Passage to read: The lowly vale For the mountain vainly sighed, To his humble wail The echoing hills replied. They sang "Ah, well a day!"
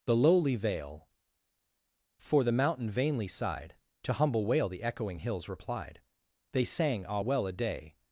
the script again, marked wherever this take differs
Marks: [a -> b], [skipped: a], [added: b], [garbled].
The lowly vale For the mountain vainly sighed, To [skipped: his] humble wail The echoing hills replied. They sang "Ah, well a day!"